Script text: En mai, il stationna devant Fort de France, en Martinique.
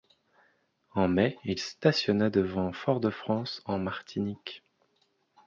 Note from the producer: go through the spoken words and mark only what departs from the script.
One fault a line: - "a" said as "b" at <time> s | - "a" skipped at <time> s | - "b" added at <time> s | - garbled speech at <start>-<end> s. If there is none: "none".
none